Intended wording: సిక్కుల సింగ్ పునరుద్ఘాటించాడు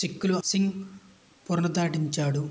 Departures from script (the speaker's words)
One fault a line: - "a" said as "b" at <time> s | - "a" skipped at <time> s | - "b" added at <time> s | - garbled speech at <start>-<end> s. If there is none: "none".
none